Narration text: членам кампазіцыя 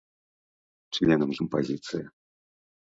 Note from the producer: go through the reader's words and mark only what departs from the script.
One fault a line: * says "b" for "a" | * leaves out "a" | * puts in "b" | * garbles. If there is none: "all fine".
all fine